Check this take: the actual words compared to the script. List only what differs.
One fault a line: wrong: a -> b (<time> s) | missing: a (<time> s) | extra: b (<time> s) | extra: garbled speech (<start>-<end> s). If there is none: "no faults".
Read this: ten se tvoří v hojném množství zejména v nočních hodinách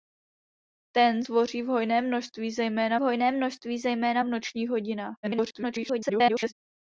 missing: se (1.2 s)
extra: hojném množství zejména (3.0 s)
extra: garbled speech (5.2-6.5 s)